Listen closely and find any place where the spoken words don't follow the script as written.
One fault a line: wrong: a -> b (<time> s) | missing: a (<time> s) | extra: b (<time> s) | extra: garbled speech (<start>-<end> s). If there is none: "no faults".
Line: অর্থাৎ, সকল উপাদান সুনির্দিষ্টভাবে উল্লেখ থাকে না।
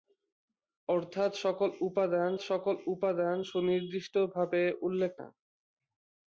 extra: সকল উপাদান (2.4 s)
missing: থাকে (5.1 s)